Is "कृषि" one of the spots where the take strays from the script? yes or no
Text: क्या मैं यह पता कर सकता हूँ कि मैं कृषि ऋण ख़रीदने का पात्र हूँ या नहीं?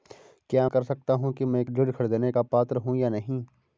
yes